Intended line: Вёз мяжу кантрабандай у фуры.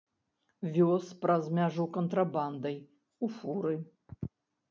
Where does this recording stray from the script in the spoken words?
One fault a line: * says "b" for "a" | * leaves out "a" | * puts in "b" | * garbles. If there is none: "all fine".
* puts in "праз"